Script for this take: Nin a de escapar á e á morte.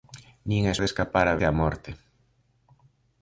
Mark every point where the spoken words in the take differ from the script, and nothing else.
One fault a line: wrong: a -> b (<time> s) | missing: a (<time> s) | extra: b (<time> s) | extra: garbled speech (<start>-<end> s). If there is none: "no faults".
no faults